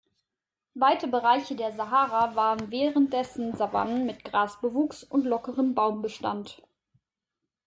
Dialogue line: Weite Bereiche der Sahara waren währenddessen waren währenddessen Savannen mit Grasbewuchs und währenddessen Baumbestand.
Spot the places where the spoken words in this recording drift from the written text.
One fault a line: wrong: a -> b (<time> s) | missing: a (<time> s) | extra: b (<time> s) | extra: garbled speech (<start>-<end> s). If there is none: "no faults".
missing: waren währenddessen (3.5 s)
wrong: währenddessen -> lockerem (5.2 s)